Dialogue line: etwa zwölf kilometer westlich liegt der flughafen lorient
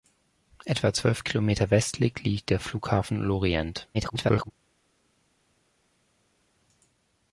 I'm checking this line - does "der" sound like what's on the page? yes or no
yes